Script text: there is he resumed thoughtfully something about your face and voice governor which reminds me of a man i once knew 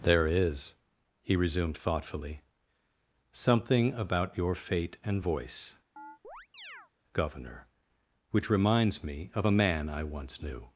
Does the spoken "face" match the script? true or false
false